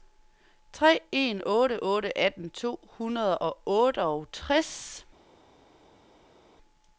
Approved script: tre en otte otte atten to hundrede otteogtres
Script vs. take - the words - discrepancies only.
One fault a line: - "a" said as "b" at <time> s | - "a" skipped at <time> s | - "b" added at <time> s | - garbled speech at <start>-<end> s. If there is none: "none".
- "og" added at 3.3 s